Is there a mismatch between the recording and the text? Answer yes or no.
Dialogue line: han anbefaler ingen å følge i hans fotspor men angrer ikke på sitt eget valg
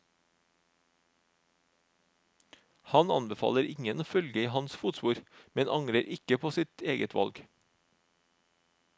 no